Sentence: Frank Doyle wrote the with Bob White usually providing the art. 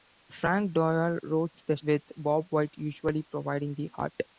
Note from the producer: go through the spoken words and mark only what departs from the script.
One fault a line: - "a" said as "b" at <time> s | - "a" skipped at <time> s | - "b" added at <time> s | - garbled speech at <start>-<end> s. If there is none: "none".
none